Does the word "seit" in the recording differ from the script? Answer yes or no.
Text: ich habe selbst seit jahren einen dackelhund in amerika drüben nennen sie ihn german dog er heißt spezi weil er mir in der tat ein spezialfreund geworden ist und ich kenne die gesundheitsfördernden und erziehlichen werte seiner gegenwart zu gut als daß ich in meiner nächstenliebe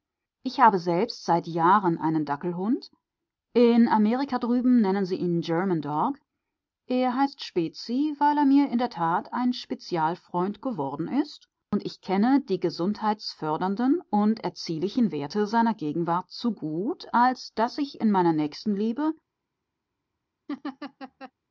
no